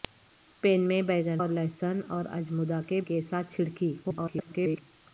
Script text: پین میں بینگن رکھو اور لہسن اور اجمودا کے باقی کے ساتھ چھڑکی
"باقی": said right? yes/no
no